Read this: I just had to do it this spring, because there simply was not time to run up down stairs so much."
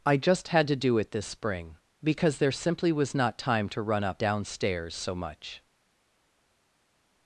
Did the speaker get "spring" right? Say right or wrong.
right